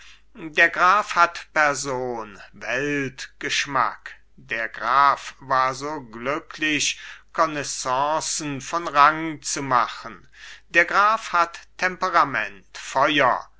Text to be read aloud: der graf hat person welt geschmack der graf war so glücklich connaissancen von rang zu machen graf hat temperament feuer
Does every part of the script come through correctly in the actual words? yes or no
no